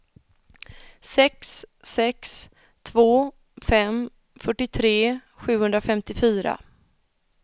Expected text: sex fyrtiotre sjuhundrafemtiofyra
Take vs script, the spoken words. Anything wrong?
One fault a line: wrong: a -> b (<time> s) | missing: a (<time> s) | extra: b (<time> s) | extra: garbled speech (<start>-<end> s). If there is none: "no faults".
extra: sex två fem (1.8 s)